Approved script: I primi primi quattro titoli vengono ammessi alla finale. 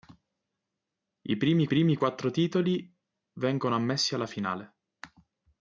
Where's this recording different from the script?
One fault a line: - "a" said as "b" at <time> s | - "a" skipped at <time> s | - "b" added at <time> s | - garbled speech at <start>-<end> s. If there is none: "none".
none